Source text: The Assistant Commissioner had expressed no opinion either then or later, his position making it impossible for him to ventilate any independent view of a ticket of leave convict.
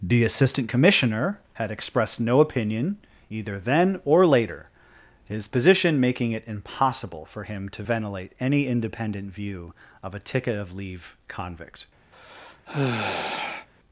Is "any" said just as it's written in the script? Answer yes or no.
yes